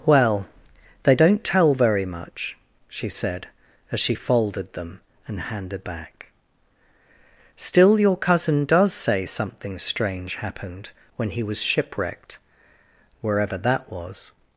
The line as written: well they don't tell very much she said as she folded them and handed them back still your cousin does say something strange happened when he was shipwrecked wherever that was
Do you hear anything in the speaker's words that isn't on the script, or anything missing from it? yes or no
yes